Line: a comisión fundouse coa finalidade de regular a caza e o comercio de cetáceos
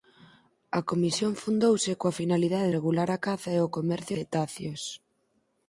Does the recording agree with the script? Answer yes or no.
no